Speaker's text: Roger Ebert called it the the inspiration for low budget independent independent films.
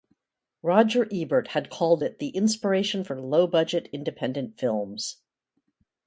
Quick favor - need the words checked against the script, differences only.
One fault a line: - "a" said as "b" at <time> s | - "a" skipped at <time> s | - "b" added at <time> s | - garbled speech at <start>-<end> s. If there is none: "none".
- "had" added at 1.5 s
- "the" skipped at 2.3 s
- "independent" skipped at 4.6 s